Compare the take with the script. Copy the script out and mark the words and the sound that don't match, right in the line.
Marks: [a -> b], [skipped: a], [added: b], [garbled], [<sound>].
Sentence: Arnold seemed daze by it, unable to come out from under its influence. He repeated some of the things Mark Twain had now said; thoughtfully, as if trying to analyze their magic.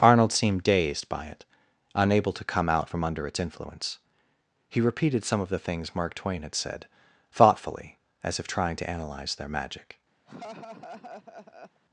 Arnold seemed [daze -> dazed] by it, unable to come out from under its influence. He repeated some of the things Mark Twain had [skipped: now] said; thoughtfully, as if trying to analyze their magic. [laugh]